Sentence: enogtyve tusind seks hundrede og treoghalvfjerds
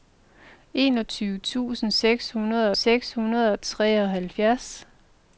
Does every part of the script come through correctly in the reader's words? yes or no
no